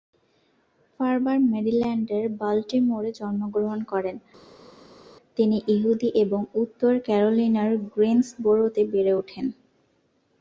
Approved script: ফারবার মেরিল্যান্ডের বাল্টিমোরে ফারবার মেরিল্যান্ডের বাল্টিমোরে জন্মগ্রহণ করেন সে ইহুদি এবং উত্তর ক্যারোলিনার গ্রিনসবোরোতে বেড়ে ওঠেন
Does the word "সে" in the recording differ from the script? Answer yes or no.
yes